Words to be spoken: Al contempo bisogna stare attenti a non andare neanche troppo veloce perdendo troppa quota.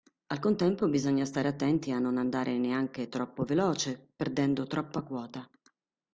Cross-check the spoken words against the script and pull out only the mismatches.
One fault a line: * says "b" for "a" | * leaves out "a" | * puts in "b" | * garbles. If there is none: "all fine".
all fine